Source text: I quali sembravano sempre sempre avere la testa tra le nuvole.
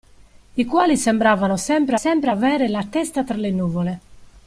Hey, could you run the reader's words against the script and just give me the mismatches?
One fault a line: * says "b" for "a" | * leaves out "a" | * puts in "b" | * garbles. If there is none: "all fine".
all fine